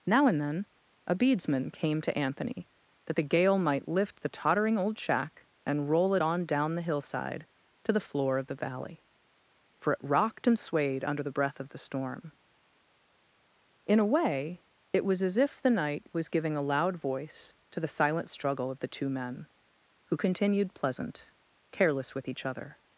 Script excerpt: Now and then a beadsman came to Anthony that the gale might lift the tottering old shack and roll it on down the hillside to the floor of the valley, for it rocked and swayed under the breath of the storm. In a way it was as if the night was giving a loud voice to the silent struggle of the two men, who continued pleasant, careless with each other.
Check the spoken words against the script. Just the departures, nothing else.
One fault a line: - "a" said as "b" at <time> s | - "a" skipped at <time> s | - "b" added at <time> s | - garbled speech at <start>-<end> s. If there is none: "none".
none